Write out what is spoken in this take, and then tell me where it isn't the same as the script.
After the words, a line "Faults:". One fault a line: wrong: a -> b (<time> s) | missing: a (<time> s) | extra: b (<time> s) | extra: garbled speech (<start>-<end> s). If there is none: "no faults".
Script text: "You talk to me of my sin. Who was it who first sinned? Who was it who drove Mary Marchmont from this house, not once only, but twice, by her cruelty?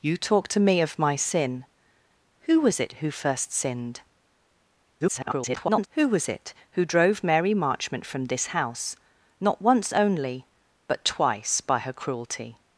"You talk to me of my sin. Who was it who first sinned? [garbled] Who was it who drove Mary Marchmont from this house, not once only, but twice, by her cruelty?
Faults:
extra: garbled speech (5.0-5.9 s)